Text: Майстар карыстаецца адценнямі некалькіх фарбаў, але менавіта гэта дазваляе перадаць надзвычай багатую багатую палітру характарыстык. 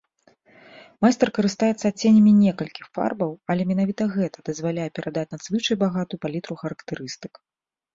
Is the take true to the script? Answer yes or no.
no